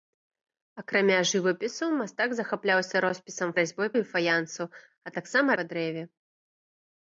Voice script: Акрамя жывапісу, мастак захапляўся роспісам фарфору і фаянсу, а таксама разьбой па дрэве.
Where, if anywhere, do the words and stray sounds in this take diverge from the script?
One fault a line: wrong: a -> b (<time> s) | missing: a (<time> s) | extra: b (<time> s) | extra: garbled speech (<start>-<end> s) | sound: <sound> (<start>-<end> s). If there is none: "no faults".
wrong: фарфору -> разьбой (3.6 s)
missing: разьбой (5.5 s)